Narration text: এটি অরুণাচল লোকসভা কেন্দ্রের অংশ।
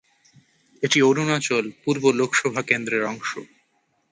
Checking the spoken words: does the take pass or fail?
fail